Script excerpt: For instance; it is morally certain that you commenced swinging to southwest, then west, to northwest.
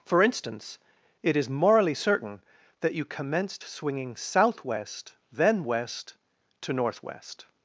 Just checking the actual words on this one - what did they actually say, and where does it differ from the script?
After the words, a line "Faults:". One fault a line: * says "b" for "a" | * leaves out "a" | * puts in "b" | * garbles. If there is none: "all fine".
For instance; it is morally certain that you commenced swinging southwest, then west, to northwest.
Faults:
* leaves out "to"